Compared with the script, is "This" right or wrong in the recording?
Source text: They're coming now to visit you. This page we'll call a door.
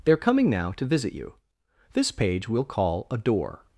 right